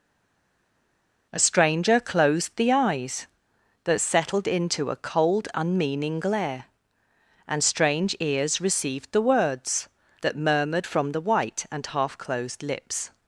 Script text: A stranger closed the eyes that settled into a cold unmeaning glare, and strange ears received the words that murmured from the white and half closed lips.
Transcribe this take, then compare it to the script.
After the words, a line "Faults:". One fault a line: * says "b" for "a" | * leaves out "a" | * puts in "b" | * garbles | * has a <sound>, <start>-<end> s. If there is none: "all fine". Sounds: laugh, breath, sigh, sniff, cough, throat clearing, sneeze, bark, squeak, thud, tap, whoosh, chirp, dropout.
A stranger closed the eyes that settled into a cold unmeaning glare, and strange ears received the words that murmured from the white and half closed lips.
Faults:
all fine